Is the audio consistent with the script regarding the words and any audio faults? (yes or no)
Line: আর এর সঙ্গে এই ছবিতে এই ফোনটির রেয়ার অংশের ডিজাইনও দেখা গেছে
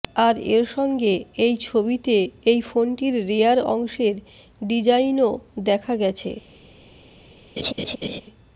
no